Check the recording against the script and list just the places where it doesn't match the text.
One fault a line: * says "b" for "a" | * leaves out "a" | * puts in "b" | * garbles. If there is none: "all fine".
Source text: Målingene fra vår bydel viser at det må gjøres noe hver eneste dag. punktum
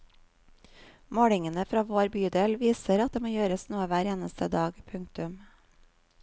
all fine